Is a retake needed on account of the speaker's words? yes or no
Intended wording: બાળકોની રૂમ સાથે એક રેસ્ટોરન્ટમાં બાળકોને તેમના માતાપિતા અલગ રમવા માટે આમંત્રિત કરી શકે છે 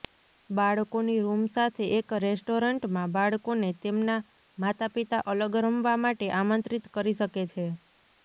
no